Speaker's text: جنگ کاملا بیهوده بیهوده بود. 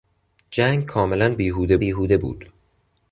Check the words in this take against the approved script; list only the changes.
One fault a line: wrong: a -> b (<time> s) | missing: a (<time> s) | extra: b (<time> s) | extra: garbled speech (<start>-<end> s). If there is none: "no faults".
no faults